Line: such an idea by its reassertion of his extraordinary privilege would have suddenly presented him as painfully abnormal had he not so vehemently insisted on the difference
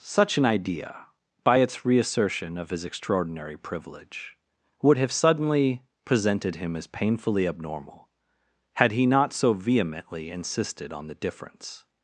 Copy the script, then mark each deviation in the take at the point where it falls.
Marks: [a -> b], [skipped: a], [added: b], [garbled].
such an idea by its reassertion of his extraordinary privilege would have suddenly presented him as painfully abnormal had he not so vehemently insisted on the difference